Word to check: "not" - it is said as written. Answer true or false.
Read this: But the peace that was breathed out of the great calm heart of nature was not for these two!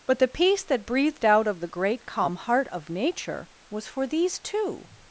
false